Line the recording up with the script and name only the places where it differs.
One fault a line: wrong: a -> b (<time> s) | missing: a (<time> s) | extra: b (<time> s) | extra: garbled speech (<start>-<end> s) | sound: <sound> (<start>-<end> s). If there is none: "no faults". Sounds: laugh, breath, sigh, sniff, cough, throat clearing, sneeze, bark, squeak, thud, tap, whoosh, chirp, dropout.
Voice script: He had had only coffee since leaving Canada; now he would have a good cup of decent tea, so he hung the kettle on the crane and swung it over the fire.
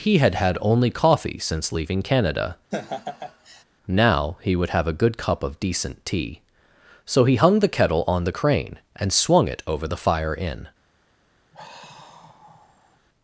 sound: laugh (2.7-3.6 s)
extra: In (10.3 s)
sound: sigh (11.5-13.0 s)